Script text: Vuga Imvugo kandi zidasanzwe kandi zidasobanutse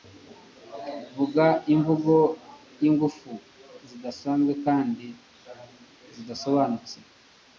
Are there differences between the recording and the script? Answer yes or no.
yes